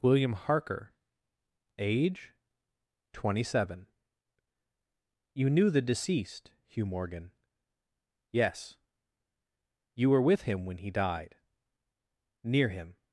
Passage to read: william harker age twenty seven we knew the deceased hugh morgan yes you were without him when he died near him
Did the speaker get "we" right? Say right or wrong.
wrong